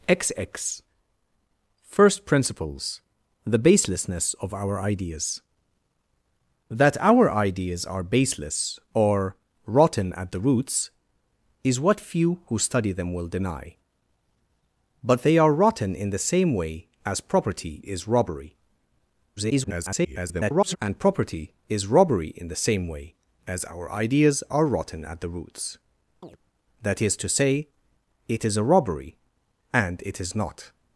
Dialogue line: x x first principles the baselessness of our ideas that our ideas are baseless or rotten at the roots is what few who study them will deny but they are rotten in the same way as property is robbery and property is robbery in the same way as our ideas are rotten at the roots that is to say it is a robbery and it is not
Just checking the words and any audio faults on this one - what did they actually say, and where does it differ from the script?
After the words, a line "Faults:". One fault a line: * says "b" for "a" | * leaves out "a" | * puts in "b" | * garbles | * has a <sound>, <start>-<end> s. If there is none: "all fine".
x x first principles the baselessness of our ideas that our ideas are baseless or rotten at the roots is what few who study them will deny but they are rotten in the same way as property is robbery [garbled] and property is robbery in the same way as our ideas are rotten at the roots that is to say it is a robbery and it is not
Faults:
* garbles
* has a chirp, 26.2-26.4 s